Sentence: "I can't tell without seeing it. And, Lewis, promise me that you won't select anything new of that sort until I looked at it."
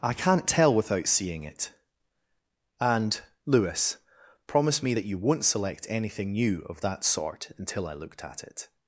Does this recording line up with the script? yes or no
yes